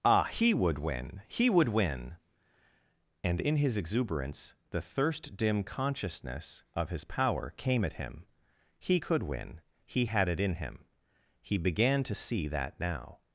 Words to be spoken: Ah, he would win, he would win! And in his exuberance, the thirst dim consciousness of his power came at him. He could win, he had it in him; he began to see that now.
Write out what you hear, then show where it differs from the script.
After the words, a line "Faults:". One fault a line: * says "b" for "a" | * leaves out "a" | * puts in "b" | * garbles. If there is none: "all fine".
Ah, he would win, he would win! And in his exuberance, the thirst dim consciousness of his power came at him. He could win, he had it in him; he began to see that now.
Faults:
all fine